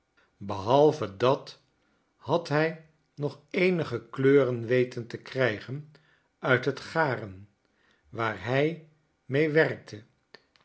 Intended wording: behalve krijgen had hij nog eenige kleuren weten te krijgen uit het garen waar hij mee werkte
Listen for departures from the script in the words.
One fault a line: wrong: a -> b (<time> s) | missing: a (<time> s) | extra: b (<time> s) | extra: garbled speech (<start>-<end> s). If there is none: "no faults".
wrong: krijgen -> dat (1.2 s)